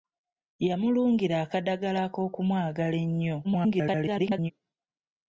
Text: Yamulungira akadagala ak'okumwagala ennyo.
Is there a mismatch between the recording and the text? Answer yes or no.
yes